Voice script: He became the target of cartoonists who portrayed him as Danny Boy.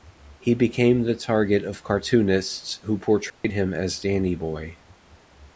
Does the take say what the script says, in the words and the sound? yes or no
no